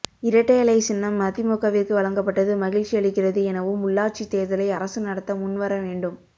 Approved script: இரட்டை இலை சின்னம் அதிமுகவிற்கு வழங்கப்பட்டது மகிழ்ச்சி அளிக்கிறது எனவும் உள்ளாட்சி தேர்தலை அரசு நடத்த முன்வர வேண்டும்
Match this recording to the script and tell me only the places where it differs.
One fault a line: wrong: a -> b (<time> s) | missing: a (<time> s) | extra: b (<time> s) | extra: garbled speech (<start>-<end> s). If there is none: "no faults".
no faults